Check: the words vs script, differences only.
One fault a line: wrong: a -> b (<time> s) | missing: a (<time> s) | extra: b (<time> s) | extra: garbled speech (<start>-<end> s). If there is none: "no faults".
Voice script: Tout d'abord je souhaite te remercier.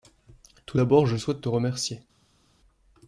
no faults